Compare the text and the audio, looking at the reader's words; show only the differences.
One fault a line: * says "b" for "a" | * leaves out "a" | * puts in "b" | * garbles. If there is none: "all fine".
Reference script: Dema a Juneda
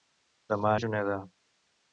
all fine